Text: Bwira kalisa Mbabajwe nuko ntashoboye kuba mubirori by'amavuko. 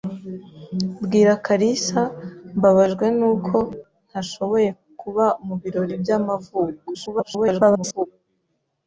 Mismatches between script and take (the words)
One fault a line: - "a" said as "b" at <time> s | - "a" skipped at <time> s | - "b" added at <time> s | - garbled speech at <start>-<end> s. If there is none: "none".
- garbled speech at 6.9-8.1 s